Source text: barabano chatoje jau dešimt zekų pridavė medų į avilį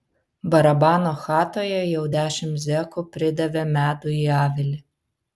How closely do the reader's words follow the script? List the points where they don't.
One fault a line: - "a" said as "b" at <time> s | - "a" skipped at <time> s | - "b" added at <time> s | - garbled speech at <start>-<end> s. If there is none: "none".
none